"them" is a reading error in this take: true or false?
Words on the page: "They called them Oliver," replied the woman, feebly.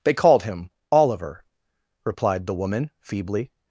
true